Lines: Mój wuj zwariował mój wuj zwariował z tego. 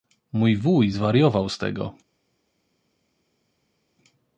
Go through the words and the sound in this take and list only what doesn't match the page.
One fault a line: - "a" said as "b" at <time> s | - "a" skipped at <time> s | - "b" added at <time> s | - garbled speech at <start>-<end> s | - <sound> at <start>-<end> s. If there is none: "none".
- "mój wuj zwariował" skipped at 1.5 s